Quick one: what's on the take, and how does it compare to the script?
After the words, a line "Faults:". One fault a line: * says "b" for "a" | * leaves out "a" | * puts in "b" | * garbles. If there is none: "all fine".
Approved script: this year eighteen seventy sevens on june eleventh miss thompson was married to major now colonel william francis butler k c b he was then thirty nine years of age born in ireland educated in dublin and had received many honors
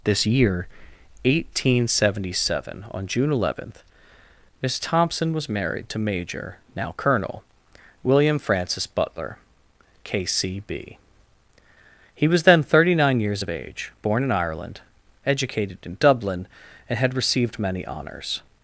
this year eighteen seventy seven on june eleventh miss thompson was married to major now colonel william francis butler k c b he was then thirty nine years of age born in ireland educated in dublin and had received many honors
Faults:
* says "seven" for "sevens"